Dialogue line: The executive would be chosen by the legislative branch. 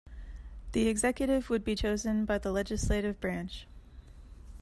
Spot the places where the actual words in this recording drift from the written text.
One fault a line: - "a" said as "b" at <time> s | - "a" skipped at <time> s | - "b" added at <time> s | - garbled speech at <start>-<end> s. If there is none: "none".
none